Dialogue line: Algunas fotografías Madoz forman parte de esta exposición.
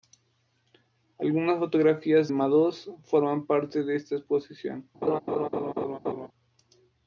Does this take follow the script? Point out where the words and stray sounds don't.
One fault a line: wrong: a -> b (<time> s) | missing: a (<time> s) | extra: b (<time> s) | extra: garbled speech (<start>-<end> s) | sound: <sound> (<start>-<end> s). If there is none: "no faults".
sound: laugh (5.0-6.3 s)